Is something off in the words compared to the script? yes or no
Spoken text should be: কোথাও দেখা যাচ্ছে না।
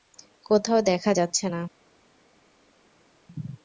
no